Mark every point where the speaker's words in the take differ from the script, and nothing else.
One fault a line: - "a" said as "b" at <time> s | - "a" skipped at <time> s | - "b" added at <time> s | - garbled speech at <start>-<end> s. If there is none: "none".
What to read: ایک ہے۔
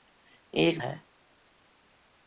none